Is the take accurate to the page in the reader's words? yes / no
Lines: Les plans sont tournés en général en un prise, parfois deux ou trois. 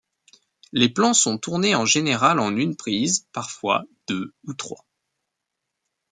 no